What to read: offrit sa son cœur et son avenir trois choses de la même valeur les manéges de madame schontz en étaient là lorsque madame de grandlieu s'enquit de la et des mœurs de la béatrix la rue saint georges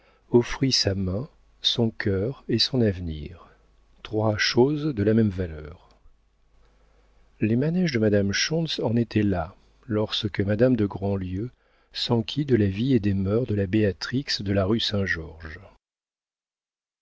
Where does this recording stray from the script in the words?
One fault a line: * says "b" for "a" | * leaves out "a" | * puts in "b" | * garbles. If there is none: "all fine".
* puts in "main"
* puts in "vie"
* puts in "de"